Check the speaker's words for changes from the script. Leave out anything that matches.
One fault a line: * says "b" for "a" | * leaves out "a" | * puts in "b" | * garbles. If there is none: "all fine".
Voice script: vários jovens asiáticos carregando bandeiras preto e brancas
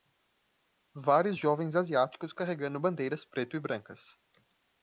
all fine